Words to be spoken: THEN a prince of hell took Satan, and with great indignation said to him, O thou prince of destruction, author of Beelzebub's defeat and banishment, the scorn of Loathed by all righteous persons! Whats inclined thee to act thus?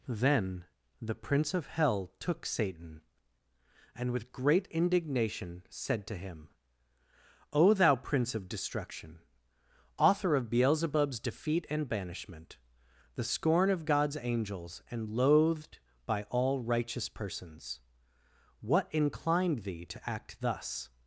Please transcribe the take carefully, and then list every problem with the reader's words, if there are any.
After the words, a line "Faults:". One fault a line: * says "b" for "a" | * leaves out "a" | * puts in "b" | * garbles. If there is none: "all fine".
THEN the prince of hell took Satan, and with great indignation said to him, O thou prince of destruction, author of Beelzebub's defeat and banishment, the scorn of God's angels and loathed by all righteous persons! What inclined thee to act thus?
Faults:
* says "the" for "a"
* puts in "God's angels and"
* says "What" for "Whats"